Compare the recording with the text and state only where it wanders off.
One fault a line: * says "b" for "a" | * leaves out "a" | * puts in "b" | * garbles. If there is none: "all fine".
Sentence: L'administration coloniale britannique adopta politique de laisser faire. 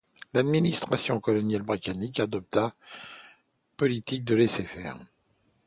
all fine